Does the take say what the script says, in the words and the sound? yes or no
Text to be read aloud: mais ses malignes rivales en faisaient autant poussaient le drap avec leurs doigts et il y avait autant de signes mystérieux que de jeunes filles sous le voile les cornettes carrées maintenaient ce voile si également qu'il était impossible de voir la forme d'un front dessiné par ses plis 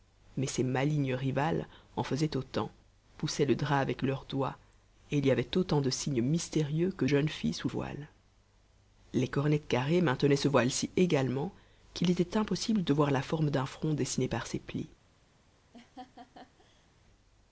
no